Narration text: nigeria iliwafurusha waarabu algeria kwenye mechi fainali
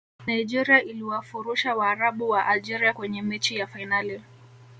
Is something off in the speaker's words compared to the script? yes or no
yes